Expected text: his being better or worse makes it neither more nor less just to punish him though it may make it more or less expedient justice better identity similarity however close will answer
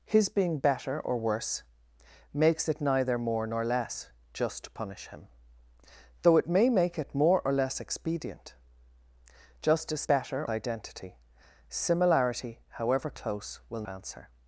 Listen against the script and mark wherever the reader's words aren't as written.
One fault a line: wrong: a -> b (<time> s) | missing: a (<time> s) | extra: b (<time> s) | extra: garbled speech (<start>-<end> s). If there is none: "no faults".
no faults